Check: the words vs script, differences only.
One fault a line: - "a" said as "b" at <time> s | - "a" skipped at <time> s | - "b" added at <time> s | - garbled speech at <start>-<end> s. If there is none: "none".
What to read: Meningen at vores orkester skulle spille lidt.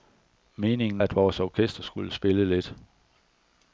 none